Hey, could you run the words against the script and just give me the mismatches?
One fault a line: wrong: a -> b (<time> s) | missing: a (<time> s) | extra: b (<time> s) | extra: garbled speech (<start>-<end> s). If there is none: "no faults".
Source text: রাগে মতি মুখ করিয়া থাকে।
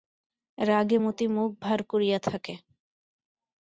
extra: ভার (1.6 s)